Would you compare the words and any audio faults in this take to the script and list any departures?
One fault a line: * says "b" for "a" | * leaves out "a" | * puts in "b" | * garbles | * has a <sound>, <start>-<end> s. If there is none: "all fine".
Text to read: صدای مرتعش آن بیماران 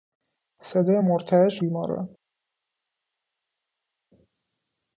* leaves out "آن"